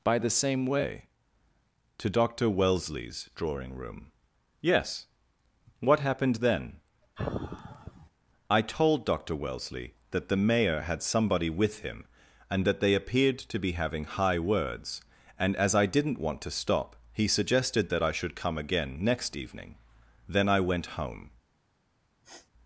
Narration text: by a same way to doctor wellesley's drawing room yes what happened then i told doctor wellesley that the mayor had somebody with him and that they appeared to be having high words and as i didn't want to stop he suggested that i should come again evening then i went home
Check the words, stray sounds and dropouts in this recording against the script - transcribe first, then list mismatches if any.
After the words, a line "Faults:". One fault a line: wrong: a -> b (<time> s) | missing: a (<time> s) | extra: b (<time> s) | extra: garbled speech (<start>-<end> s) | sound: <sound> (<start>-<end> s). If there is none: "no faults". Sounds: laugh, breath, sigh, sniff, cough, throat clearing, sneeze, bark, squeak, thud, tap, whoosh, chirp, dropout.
by the same way to doctor wellesley's drawing room yes what happened then i told doctor wellesley that the mayor had somebody with him and that they appeared to be having high words and as i didn't want to stop he suggested that i should come again next evening then i went home
Faults:
wrong: a -> the (0.2 s)
sound: sigh (7.2-8.1 s)
extra: next (19.0 s)
sound: sniff (22.2-22.5 s)